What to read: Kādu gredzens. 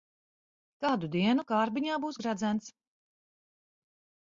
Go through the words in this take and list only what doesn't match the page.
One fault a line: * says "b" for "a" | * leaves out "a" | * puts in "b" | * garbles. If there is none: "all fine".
* puts in "dienu kārbiņā būs"